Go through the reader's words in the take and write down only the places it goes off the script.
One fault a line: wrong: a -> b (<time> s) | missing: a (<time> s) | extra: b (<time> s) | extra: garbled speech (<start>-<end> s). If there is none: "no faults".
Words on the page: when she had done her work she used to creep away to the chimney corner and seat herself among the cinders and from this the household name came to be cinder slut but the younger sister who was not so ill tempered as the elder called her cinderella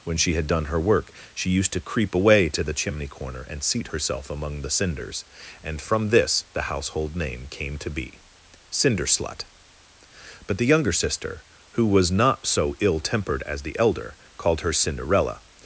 no faults